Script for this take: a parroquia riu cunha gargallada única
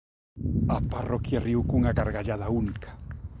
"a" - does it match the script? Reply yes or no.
yes